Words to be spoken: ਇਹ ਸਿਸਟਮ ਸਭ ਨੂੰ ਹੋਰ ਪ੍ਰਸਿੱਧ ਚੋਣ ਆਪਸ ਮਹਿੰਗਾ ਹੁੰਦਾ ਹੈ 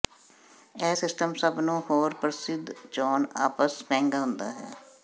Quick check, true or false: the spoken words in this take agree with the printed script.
true